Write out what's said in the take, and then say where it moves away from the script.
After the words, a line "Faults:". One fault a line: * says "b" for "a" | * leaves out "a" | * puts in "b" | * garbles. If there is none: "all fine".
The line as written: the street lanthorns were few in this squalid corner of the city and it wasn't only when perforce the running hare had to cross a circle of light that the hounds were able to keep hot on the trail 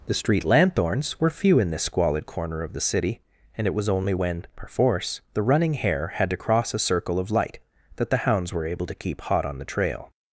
the street lanthorns were few in this squalid corner of the city and it was only when perforce the running hare had to cross a circle of light that the hounds were able to keep hot on the trail
Faults:
* says "was" for "wasn't"